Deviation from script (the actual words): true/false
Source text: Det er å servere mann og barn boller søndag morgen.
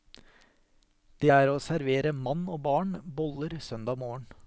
false